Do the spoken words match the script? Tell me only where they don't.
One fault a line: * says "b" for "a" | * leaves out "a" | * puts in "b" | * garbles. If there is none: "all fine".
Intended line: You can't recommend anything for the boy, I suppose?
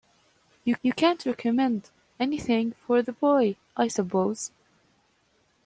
* puts in "you"